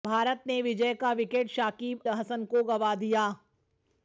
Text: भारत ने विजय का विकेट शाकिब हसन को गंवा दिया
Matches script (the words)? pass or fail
pass